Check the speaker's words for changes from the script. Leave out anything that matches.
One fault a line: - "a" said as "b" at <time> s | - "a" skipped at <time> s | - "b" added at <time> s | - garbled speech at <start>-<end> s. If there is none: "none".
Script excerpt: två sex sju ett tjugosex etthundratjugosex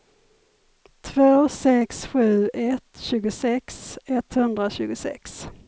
none